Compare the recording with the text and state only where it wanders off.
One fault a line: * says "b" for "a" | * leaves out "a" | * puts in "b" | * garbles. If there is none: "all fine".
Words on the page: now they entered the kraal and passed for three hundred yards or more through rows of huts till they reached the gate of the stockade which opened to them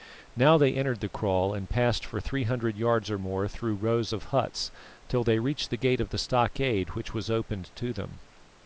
* puts in "was"